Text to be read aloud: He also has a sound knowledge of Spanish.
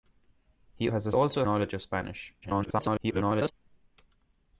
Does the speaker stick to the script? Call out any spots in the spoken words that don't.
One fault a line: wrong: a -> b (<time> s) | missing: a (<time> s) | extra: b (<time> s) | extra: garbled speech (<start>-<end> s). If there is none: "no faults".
missing: also (0.9 s)
wrong: sound -> also (1.1 s)
extra: garbled speech (2.4-3.5 s)